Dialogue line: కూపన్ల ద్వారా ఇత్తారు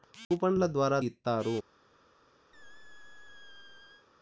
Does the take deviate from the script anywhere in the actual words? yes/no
no